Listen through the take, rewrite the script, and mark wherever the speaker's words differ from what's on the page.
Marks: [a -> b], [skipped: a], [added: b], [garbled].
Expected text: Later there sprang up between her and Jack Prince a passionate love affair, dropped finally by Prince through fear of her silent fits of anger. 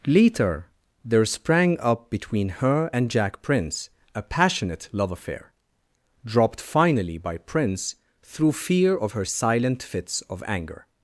Later there sprang up between her and Jack Prince a passionate love affair, dropped finally by Prince through fear of her silent fits of anger.